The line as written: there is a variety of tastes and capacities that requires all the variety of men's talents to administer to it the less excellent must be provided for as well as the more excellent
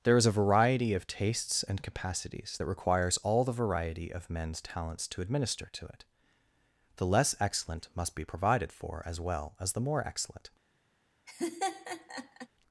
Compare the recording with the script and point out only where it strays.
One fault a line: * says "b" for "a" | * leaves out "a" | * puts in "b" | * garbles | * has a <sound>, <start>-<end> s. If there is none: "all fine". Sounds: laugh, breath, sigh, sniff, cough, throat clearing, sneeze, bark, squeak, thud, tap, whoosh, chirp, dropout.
* has a laugh, 11.3-12.5 s